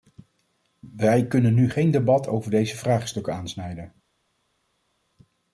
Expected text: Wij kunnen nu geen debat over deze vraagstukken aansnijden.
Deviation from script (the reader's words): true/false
false